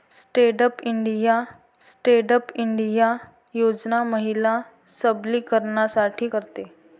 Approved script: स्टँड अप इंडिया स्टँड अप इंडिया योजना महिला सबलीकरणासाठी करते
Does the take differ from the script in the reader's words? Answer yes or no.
no